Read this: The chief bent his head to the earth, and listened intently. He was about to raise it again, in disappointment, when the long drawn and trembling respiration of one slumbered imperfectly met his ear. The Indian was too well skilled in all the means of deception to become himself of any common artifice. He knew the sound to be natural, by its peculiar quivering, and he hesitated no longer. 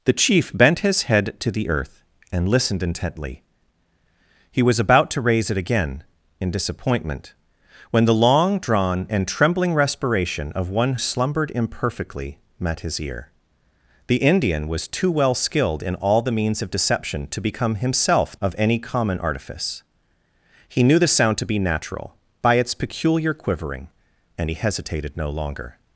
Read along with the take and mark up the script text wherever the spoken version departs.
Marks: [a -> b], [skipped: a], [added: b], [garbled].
The chief bent his head to the earth, and listened intently. He was about to raise it again, in disappointment, when the long drawn and trembling respiration of one slumbered imperfectly met his ear. The Indian was too well skilled in all the means of deception to become himself of any common artifice. He knew the sound to be natural, by its peculiar quivering, and he hesitated no longer.